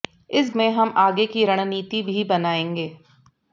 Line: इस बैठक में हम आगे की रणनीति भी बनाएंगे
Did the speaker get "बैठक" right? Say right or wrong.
wrong